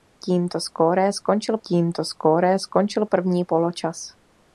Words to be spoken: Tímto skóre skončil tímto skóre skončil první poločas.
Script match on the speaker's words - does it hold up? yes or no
yes